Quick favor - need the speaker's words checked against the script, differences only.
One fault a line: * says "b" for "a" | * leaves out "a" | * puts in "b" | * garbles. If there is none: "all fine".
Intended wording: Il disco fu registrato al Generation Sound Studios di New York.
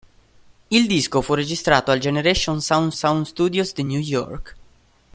* puts in "Sound"